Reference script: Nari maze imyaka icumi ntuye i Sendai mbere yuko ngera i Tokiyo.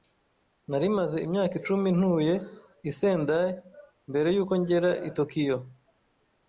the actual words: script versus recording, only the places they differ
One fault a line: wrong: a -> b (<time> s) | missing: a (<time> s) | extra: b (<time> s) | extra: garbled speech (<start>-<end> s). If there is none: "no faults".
no faults